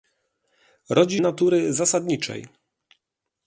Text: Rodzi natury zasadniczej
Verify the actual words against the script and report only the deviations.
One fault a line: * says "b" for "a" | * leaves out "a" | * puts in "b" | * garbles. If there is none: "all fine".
all fine